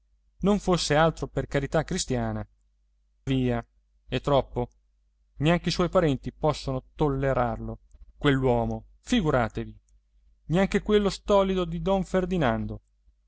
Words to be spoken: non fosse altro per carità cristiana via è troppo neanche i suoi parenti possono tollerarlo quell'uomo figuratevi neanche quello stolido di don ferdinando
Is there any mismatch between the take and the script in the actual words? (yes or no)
no